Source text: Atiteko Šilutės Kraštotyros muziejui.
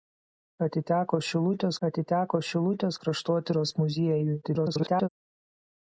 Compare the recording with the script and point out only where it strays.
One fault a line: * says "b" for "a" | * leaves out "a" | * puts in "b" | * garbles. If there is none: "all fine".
* puts in "atiteko Šilutės"
* garbles